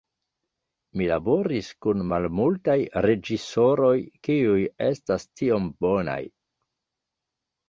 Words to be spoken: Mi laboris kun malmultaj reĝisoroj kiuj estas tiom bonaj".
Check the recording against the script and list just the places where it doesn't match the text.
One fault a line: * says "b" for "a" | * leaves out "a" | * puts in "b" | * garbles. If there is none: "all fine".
all fine